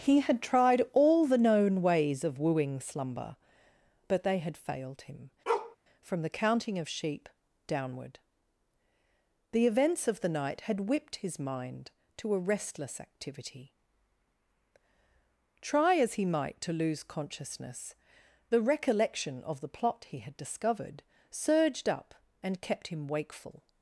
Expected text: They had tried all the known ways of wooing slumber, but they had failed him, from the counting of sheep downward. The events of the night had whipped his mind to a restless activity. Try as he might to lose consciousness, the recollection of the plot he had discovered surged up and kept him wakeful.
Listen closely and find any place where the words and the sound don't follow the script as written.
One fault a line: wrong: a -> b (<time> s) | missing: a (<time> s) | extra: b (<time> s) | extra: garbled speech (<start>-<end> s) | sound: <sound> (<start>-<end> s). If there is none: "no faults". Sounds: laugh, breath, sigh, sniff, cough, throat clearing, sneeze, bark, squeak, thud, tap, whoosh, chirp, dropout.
wrong: They -> He (0.0 s)
sound: bark (5.5-5.8 s)